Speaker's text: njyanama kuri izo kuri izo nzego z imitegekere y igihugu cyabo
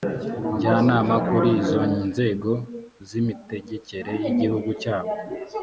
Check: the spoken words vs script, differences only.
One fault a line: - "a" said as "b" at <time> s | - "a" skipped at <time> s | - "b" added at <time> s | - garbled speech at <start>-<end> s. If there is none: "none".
- "kuri izo" skipped at 1.8 s